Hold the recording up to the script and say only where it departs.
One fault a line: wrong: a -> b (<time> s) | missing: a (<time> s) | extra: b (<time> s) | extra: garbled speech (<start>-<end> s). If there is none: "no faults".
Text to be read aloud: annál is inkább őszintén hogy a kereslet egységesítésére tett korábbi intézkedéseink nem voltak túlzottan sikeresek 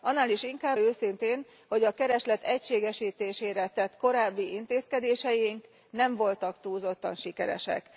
no faults